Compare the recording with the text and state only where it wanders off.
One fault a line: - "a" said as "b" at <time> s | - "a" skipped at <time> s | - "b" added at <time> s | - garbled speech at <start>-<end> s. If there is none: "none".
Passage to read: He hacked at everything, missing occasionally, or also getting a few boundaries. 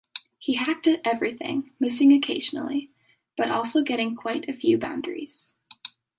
- "or" said as "but" at 3.4 s
- "quite" added at 4.1 s